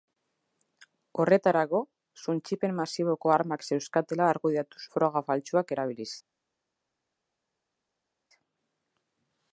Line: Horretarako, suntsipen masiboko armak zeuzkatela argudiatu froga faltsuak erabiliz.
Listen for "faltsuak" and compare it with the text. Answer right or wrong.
right